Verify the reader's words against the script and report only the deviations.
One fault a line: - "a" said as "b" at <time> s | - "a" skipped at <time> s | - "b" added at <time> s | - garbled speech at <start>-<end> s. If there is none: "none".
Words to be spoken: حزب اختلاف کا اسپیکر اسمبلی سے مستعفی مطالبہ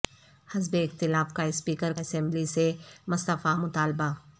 none